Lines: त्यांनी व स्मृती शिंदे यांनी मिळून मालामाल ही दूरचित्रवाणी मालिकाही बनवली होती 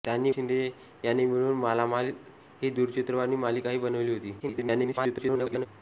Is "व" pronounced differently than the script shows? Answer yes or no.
yes